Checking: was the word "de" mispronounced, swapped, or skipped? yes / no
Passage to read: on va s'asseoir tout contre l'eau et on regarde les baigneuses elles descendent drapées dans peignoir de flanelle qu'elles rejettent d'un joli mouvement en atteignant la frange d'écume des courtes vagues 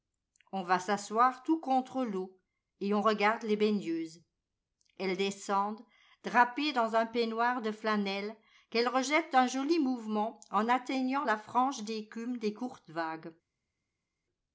no